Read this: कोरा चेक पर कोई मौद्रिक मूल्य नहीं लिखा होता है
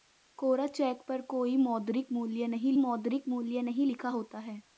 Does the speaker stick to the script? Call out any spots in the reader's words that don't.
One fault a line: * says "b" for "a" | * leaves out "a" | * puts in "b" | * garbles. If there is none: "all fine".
* puts in "मौद्रिक मूल्य नहीं"